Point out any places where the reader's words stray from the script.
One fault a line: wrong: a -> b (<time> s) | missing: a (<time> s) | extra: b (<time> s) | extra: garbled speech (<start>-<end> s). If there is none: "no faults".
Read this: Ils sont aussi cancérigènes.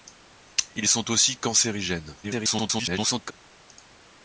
extra: garbled speech (2.2-3.3 s)